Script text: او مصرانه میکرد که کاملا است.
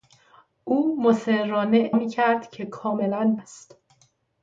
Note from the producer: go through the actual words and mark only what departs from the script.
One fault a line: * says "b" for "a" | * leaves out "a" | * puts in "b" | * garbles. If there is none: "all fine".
all fine